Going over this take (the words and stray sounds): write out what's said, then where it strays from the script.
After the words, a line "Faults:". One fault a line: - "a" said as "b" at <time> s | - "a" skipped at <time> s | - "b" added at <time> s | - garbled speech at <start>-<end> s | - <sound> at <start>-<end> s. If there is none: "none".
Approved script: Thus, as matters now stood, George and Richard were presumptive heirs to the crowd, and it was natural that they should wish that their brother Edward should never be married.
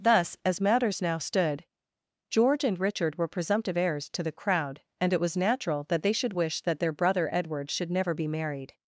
Thus, as matters now stood, George and Richard were presumptive heirs to the crowd, and it was natural that they should wish that their brother Edward should never be married.
Faults:
none